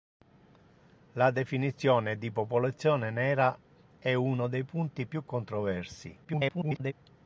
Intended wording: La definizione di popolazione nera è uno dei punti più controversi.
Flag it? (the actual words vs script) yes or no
yes